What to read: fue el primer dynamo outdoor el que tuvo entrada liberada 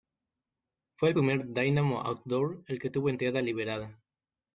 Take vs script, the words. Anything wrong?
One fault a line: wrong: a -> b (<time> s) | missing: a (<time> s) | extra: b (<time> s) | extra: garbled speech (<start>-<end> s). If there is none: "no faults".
no faults